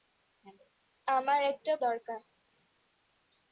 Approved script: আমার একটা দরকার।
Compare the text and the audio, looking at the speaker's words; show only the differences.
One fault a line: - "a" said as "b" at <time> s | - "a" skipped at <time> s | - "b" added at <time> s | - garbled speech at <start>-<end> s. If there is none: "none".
none